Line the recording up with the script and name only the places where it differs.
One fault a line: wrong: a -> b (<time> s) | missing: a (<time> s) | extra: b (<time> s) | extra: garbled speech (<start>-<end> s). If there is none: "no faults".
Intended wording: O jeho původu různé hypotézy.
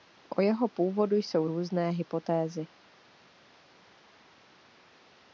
extra: jsou (1.1 s)